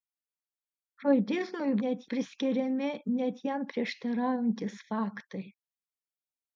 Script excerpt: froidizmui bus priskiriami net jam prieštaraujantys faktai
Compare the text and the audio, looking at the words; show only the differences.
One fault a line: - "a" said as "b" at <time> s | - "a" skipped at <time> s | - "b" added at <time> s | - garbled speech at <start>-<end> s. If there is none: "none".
- "bus" said as "net" at 1.8 s